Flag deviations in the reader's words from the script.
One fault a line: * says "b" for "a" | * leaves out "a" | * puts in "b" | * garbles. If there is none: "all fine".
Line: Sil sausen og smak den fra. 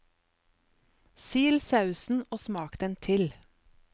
* says "til" for "fra"